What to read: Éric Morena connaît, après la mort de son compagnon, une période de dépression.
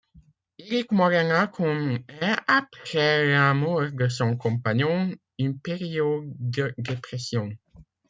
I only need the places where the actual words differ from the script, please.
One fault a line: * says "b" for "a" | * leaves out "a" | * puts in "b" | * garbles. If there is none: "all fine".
all fine